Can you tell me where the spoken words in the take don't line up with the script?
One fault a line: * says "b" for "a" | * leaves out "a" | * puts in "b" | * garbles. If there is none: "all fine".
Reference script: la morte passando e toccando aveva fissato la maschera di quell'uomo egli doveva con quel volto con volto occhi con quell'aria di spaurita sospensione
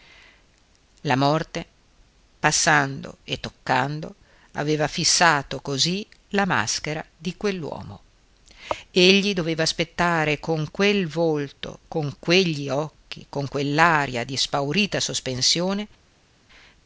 * puts in "così"
* puts in "aspettare"
* says "quegli" for "volto"